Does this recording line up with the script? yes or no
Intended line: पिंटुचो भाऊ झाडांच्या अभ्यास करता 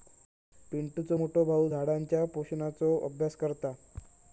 no